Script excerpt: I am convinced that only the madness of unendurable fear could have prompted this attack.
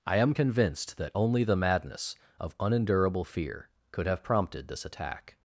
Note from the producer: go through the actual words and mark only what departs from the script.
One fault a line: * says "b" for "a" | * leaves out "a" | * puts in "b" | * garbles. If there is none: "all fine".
all fine